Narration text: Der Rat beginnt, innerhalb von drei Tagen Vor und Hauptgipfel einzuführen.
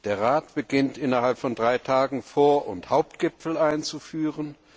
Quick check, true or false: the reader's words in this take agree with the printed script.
true